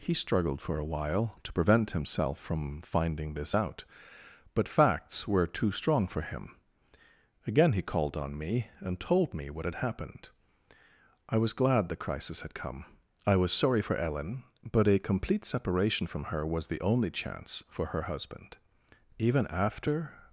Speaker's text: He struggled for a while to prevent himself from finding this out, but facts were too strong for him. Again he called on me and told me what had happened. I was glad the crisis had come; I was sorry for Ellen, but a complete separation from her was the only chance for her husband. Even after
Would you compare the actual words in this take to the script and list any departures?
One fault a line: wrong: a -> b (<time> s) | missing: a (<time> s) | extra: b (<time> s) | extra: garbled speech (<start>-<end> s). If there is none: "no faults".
no faults